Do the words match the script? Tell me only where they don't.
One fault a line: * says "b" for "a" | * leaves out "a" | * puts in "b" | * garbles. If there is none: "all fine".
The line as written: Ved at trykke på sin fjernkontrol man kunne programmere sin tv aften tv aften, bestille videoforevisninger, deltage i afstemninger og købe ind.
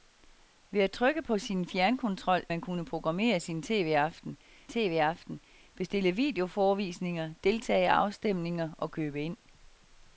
all fine